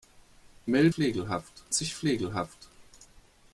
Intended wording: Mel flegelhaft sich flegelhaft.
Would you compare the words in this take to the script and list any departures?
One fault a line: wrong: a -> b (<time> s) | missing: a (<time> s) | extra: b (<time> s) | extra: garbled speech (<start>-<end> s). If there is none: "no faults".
no faults